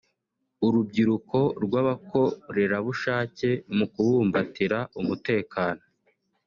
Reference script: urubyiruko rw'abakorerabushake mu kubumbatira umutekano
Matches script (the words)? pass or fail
pass